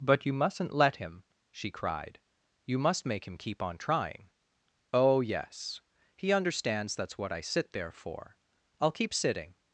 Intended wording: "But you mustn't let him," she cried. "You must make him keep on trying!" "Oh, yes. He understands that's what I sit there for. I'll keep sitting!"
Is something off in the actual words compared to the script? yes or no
no